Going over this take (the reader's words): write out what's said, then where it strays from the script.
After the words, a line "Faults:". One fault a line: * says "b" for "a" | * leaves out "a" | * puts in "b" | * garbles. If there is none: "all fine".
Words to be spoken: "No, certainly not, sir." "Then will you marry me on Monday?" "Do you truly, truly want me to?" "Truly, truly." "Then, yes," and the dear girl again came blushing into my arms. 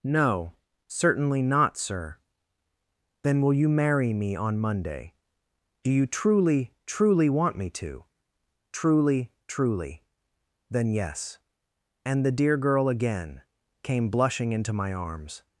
"No, certainly not, sir." "Then will you marry me on Monday?" "Do you truly, truly want me to?" "Truly, truly." "Then, yes," and the dear girl again came blushing into my arms.
Faults:
all fine